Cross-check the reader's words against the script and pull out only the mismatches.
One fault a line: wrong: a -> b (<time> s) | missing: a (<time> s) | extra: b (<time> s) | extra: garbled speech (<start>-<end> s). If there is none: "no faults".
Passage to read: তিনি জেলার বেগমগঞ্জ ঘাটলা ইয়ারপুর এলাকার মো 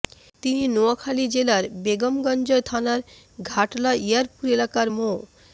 extra: নোয়াখালী (0.7 s)
extra: থানার (2.7 s)